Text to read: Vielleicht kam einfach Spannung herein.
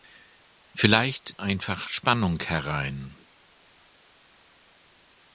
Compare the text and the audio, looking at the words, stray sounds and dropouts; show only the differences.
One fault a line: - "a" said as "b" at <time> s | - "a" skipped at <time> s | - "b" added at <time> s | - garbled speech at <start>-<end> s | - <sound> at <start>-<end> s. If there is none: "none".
- "kam" skipped at 1.4 s